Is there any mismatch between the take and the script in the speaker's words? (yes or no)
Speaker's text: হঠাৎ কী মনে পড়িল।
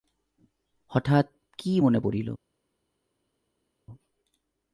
no